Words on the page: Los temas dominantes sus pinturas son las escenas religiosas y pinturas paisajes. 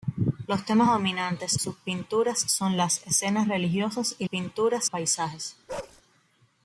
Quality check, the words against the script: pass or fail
pass